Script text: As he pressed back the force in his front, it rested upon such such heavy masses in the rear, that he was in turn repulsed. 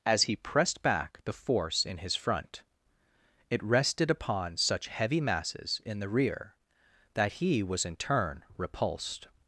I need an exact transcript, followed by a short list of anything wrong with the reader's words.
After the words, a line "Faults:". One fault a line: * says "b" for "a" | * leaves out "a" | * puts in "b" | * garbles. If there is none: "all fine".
As he pressed back the force in his front, it rested upon such heavy masses in the rear, that he was in turn repulsed.
Faults:
* leaves out "such"